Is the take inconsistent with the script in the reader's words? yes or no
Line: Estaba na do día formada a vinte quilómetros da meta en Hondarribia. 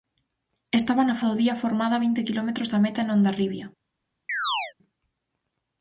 no